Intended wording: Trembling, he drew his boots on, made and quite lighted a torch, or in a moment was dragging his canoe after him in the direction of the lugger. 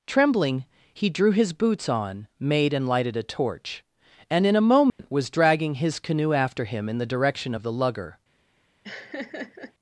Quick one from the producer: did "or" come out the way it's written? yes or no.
no